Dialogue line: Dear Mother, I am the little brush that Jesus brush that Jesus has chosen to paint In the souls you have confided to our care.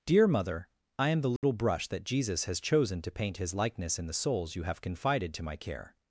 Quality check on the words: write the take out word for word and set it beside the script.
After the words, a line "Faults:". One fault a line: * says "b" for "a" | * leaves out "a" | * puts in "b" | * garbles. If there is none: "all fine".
Dear Mother, I am the little brush that Jesus has chosen to paint His likeness in the souls you have confided to my care.
Faults:
* leaves out "brush that Jesus"
* puts in "His likeness"
* says "my" for "our"